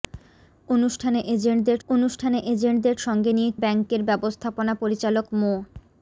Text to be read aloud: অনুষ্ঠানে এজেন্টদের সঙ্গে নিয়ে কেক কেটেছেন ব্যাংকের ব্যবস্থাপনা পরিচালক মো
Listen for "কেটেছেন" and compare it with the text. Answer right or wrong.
wrong